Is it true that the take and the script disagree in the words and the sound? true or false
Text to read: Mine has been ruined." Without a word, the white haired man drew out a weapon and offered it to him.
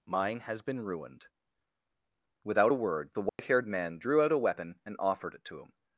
true